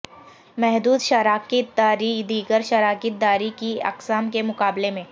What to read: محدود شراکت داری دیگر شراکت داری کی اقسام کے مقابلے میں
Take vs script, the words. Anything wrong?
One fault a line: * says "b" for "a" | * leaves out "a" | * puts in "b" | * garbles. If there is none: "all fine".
all fine